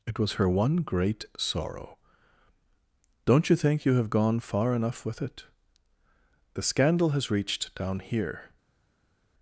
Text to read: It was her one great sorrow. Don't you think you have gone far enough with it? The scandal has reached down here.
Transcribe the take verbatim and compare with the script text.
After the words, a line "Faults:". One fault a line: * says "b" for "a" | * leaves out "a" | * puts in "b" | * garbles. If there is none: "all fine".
It was her one great sorrow. Don't you think you have gone far enough with it? The scandal has reached down here.
Faults:
all fine